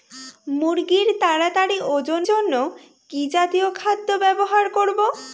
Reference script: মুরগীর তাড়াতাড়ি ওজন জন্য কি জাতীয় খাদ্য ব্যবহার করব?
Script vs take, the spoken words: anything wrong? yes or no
no